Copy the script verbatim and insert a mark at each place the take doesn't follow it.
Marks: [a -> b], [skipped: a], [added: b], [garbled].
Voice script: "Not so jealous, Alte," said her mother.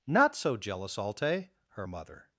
"Not so jealous, Alte," [skipped: said] her mother.